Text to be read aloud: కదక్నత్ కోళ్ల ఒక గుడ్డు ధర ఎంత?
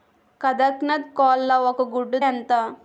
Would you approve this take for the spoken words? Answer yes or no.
no